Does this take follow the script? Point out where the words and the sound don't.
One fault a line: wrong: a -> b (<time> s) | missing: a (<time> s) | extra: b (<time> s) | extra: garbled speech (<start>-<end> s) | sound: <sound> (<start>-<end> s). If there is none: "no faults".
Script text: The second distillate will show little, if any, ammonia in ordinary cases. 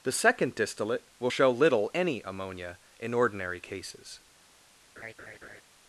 missing: if (1.9 s)
sound: laugh (5.0-5.6 s)